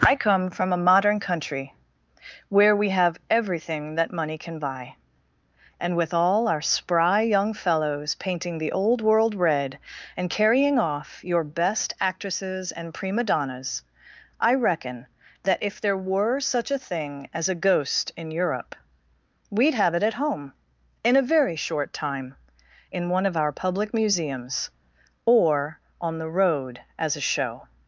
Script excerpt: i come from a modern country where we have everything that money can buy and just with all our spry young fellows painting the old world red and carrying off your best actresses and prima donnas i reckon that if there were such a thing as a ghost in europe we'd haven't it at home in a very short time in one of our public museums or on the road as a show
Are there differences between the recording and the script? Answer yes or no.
yes